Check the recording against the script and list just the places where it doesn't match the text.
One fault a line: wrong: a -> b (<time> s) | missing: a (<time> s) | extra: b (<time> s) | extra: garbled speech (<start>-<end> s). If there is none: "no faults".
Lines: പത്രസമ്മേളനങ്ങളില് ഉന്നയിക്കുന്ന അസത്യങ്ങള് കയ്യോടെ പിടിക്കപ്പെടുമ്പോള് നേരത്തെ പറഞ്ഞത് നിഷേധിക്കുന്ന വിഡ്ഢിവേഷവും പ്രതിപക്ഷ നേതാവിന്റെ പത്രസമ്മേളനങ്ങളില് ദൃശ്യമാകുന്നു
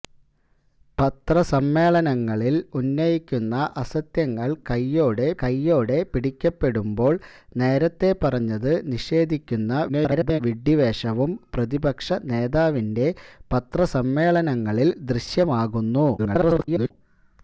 extra: കയ്യോടെ (5.4 s)
extra: garbled speech (9.9-10.4 s)
extra: garbled speech (16.2-16.9 s)